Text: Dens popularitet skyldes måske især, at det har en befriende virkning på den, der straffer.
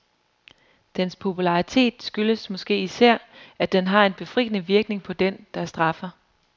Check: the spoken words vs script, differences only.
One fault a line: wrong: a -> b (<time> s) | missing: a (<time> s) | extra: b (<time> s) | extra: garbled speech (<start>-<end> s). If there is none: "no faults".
wrong: det -> den (3.7 s)